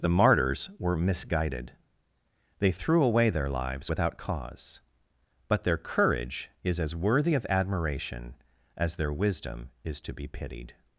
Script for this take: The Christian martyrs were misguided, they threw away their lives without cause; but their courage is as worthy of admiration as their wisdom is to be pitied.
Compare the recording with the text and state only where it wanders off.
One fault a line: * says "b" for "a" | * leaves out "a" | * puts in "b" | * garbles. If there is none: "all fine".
* leaves out "Christian"